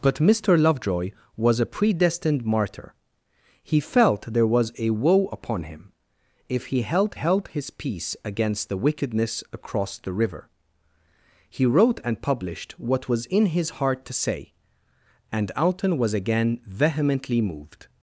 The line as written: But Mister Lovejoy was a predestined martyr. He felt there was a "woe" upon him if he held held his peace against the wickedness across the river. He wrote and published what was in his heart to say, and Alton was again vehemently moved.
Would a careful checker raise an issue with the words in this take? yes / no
no